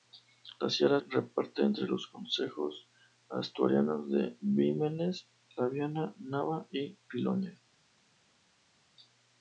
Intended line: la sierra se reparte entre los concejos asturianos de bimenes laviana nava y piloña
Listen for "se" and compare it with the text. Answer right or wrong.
wrong